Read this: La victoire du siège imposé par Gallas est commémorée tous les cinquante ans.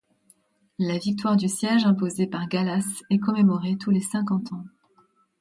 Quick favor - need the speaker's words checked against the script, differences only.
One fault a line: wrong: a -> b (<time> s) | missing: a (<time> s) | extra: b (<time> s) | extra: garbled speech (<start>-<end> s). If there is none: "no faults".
no faults